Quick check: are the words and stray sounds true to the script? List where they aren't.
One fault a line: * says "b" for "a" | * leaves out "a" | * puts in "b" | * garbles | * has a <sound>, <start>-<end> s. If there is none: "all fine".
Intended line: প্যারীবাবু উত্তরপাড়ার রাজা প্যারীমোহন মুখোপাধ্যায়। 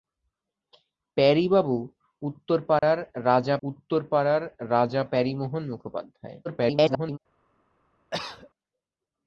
* has a dropout, 2.8-2.8 s
* puts in "উত্তরপাড়ার রাজা"
* garbles
* has a cough, 8.1-8.5 s